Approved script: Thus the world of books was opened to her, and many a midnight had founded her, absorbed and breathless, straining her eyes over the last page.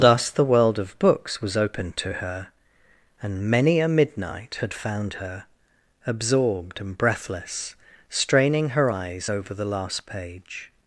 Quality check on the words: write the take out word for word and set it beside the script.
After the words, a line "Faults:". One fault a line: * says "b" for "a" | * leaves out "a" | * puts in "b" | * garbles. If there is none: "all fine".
Thus the world of books was opened to her, and many a midnight had found her, absorbed and breathless, straining her eyes over the last page.
Faults:
* says "found" for "founded"